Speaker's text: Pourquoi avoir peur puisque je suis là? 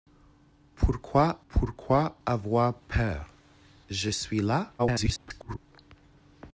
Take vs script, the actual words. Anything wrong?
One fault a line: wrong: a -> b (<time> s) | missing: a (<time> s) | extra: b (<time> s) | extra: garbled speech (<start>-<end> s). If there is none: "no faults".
extra: pourquoi (1.5 s)
missing: puisque (3.3 s)
extra: garbled speech (4.8-5.6 s)